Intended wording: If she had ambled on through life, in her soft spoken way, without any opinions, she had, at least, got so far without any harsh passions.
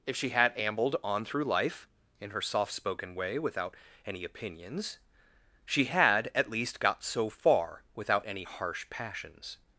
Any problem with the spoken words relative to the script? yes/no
no